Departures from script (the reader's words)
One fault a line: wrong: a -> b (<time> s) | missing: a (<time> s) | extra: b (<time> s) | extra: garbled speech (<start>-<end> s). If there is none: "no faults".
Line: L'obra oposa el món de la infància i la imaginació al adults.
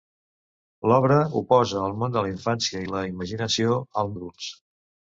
no faults